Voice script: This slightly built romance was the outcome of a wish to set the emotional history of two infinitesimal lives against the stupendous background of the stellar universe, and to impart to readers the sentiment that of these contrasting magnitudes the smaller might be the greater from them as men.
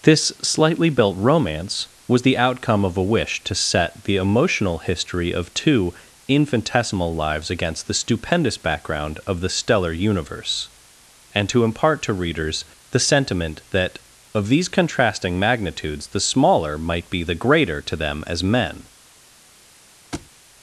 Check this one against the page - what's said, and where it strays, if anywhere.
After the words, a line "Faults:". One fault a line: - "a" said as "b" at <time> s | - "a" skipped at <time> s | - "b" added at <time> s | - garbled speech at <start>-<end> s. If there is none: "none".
This slightly built romance was the outcome of a wish to set the emotional history of two infinitesimal lives against the stupendous background of the stellar universe, and to impart to readers the sentiment that of these contrasting magnitudes the smaller might be the greater to them as men.
Faults:
- "from" said as "to" at 17.8 s